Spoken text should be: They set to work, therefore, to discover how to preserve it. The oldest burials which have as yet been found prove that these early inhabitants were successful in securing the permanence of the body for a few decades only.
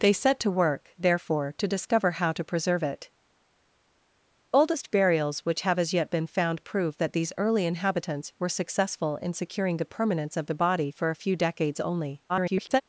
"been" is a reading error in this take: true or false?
false